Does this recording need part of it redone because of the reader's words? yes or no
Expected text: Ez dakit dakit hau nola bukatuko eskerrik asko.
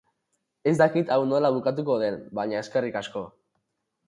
yes